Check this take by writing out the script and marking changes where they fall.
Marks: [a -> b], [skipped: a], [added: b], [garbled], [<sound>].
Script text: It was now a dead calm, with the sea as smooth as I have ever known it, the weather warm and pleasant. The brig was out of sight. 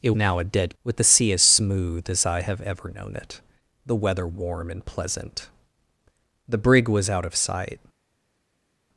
It [skipped: was] now a dead [skipped: calm,] with the sea as smooth as I have ever known it, the weather warm and pleasant. The brig was out of sight.